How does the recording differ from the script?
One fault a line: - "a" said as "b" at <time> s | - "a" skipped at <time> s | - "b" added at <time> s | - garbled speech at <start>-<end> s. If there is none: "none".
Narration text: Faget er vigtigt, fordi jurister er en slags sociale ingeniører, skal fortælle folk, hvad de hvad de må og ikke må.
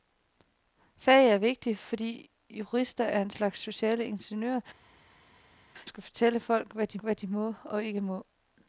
none